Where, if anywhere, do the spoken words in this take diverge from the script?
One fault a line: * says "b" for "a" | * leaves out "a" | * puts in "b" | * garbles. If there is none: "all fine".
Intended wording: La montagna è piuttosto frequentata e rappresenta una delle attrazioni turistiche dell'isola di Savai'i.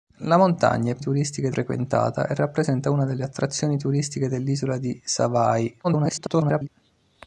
* says "turistiche" for "piuttosto"
* garbles